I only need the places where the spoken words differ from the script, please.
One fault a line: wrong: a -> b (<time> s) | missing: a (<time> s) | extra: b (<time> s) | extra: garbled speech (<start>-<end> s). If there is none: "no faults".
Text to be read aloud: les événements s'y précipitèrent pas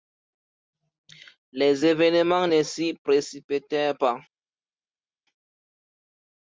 extra: ne (2.4 s)